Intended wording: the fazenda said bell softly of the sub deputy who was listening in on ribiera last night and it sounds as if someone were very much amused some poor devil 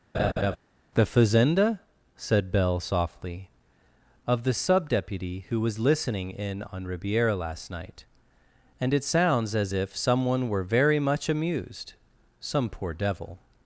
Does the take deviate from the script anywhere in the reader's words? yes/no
no